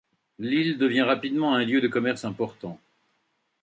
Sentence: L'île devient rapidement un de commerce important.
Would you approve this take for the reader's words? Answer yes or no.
no